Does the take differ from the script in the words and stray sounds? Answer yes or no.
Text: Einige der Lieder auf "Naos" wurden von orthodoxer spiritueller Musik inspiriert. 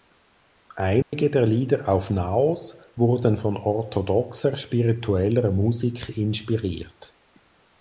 yes